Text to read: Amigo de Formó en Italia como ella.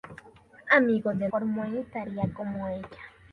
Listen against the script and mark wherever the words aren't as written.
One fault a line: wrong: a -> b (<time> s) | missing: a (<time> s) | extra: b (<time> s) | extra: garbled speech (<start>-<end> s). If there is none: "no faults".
no faults